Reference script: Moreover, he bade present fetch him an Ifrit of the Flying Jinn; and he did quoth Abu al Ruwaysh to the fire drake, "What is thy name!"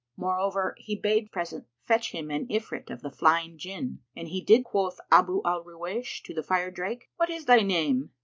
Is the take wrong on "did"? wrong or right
right